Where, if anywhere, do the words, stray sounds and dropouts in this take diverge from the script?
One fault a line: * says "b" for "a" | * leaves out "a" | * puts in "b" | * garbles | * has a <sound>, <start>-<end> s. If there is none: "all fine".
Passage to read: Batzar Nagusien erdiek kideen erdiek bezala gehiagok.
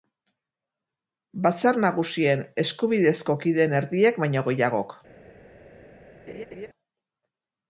* says "eskubidezko" for "erdiek"
* says "baino" for "bezala"
* has a laugh, 6.3-6.7 s